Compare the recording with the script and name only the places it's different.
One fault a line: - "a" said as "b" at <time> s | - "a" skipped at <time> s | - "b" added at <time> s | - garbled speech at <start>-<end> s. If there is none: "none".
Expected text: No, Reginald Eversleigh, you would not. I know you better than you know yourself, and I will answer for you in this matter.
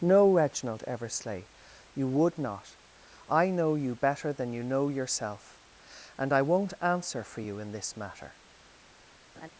- "will" said as "won't" at 6.4 s